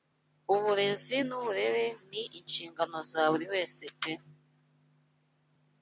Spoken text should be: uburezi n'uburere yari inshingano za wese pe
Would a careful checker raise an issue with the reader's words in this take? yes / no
yes